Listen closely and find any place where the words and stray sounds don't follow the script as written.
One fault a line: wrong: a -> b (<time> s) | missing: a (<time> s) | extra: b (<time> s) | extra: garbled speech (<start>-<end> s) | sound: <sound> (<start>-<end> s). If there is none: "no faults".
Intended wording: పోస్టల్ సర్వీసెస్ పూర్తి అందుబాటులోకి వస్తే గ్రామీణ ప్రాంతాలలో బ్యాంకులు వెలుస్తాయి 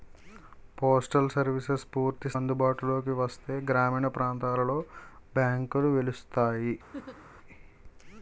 sound: laugh (6.9-7.3 s)